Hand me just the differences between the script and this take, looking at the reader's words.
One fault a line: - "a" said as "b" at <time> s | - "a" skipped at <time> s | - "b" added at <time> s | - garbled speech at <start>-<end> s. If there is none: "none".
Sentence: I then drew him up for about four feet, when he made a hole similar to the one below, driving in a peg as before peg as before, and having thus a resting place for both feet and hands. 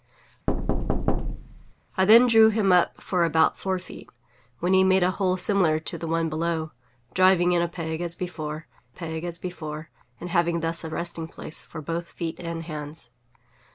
none